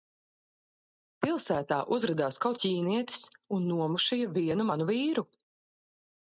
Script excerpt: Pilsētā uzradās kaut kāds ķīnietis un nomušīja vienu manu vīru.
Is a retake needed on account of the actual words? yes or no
yes